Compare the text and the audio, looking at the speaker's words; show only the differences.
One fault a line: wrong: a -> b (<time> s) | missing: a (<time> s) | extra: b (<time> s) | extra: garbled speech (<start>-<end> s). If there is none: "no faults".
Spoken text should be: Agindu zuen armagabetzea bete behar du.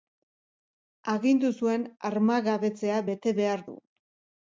no faults